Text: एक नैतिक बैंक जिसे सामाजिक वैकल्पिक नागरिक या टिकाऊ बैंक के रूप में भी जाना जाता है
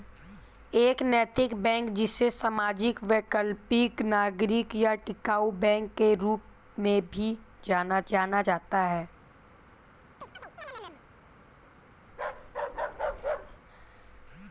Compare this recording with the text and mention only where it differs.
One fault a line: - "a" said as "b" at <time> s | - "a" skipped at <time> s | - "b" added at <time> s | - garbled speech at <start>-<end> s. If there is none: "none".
- "जाना" added at 8.1 s